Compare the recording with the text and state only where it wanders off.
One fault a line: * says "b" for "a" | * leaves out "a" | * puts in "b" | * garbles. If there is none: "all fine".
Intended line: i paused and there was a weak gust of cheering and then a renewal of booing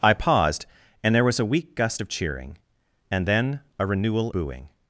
* leaves out "of"